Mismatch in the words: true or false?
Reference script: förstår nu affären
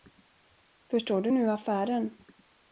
true